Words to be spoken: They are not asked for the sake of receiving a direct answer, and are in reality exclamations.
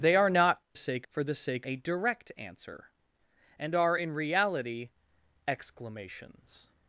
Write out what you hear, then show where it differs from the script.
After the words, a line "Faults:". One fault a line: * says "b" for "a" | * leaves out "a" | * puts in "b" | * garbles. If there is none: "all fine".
They are not sake for the sake a direct answer, and are in reality exclamations.
Faults:
* says "sake" for "asked"
* leaves out "of receiving"